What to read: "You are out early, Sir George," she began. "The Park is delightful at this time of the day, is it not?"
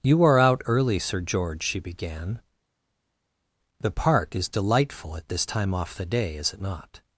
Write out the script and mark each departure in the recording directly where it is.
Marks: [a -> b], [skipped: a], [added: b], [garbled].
"You are out early, Sir George," she began. "The Park is delightful at this time [of -> off] the day, is it not?"